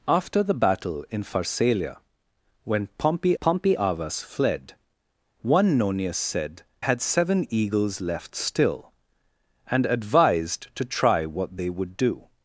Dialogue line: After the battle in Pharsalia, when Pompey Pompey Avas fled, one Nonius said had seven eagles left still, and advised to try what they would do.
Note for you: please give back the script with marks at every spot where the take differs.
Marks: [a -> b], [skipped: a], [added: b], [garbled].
After the battle in Pharsalia, when Pompey Pompey Avas fled, one Nonius said had seven eagles left still, and advised to try what they would do.